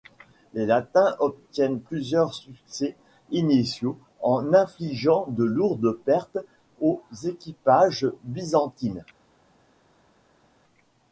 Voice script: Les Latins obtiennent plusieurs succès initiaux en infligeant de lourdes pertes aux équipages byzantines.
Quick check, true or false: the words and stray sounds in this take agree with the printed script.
true